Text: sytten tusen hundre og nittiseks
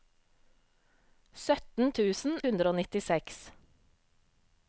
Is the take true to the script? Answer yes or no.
yes